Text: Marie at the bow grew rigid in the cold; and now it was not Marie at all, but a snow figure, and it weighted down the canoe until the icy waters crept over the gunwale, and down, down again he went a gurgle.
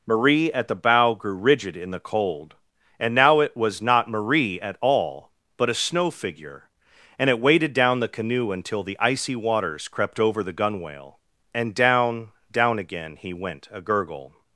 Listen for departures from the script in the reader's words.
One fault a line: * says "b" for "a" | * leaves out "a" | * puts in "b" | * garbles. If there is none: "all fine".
all fine